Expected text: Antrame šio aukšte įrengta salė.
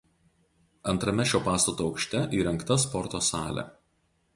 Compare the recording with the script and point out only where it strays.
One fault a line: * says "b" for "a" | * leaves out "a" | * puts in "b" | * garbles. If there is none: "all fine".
* puts in "pastato"
* puts in "sporto"